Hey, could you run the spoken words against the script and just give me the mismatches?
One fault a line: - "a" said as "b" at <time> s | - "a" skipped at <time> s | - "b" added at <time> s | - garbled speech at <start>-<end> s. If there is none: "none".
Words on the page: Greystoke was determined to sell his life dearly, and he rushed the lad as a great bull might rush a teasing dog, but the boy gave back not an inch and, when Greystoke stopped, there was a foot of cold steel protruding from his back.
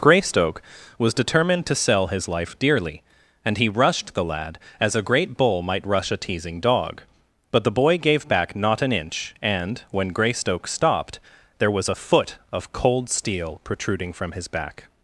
none